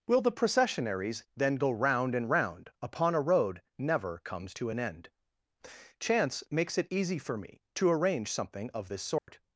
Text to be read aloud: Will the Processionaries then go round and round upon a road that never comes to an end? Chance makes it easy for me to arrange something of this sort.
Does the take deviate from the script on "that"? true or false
true